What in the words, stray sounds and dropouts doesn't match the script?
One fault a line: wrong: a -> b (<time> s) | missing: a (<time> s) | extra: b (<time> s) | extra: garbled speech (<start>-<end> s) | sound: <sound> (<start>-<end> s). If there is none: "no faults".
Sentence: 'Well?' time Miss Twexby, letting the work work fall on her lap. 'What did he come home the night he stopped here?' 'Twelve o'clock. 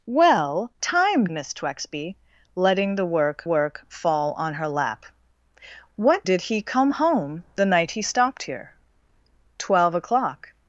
no faults